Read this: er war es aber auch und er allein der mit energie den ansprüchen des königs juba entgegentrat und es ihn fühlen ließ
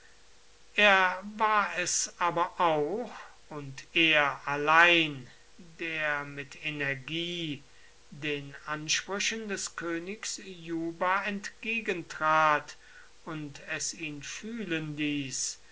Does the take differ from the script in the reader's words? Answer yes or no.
no